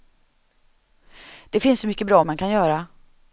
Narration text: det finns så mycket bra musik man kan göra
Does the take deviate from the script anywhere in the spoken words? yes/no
yes